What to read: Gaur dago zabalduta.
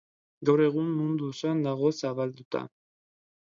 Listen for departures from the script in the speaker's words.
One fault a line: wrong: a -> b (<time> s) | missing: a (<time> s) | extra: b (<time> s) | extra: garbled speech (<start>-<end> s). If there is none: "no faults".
extra: egun mundu osoan (0.7 s)